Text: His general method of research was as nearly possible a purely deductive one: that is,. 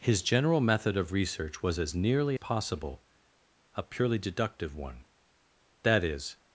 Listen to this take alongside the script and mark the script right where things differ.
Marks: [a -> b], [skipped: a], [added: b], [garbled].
His general method of research was as nearly possible a purely deductive one: that is,.